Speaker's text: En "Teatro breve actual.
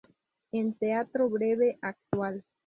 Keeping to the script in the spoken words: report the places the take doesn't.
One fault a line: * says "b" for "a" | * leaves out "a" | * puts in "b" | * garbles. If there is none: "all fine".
all fine